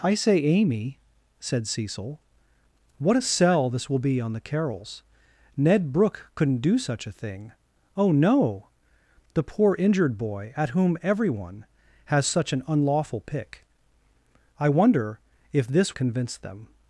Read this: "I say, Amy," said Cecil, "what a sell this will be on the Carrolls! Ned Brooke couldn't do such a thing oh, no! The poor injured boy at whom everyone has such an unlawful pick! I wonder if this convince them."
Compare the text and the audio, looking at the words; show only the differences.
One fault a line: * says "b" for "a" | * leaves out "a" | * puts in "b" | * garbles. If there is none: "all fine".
all fine